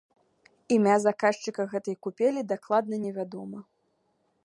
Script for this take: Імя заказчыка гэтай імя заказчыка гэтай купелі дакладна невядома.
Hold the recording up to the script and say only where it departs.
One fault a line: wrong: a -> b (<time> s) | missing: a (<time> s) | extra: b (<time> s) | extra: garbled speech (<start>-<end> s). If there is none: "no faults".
missing: імя заказчыка гэтай (1.9 s)